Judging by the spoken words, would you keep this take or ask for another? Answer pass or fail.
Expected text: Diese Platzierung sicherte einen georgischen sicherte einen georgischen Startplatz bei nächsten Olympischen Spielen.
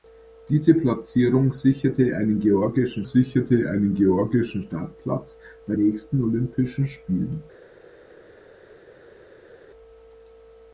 pass